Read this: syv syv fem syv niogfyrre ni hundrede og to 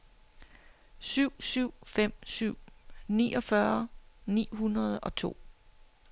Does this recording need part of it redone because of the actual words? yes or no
no